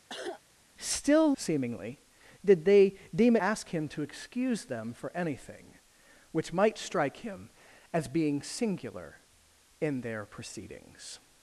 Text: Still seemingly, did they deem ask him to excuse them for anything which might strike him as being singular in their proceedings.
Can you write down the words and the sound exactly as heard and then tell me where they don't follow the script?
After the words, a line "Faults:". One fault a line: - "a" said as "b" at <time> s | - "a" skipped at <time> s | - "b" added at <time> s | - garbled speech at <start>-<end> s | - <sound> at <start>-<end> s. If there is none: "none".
Still seemingly, did they deem ask him to excuse them for anything which might strike him as being singular in their proceedings.
Faults:
- cough at 0.1-0.4 s